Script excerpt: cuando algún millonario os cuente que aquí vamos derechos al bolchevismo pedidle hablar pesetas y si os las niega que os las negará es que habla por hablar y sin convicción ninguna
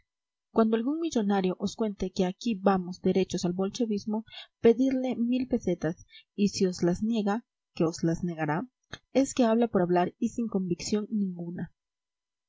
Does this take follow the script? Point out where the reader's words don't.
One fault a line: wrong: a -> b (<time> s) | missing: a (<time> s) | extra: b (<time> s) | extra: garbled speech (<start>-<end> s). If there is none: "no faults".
wrong: hablar -> mil (5.2 s)